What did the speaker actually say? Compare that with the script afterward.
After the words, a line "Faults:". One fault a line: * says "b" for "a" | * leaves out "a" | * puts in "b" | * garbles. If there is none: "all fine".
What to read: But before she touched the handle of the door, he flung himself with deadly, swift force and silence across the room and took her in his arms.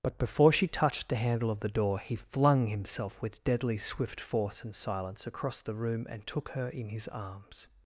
But before she touched the handle of the door, he flung himself with deadly, swift force and silence across the room and took her in his arms.
Faults:
all fine